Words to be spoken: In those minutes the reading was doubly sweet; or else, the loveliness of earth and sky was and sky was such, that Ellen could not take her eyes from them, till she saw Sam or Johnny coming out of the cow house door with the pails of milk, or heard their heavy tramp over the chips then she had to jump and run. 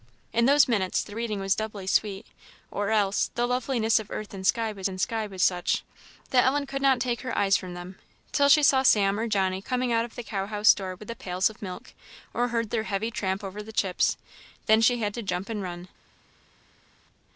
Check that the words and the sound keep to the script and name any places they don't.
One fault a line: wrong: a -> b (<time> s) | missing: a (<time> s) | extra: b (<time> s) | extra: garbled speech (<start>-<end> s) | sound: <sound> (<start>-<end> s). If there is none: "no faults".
no faults